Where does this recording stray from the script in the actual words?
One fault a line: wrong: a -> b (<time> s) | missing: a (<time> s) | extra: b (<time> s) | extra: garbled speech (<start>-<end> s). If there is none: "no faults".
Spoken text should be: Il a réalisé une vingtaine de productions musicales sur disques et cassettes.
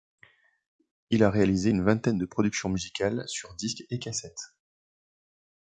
no faults